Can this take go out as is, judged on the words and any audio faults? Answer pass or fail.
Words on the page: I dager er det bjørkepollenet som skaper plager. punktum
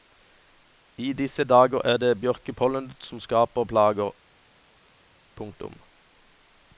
fail